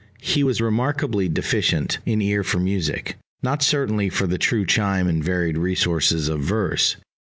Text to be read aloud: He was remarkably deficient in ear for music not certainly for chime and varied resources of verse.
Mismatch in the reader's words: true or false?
true